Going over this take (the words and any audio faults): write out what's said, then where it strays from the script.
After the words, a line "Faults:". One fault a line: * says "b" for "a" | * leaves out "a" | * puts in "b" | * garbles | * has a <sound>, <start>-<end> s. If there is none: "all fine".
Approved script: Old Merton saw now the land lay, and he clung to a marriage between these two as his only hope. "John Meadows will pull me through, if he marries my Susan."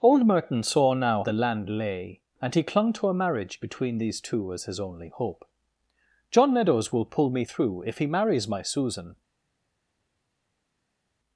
Old Merton saw now the land lay, and he clung to a marriage between these two as his only hope. "John Meadows will pull me through, if he marries my Susan."
Faults:
all fine